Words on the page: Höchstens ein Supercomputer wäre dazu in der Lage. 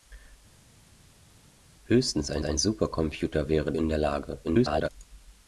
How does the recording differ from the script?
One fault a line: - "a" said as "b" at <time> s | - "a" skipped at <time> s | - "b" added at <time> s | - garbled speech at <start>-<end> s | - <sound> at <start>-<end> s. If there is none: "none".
- "ein" added at 2.4 s
- "dazu" skipped at 3.7 s
- garbled speech at 4.4-4.9 s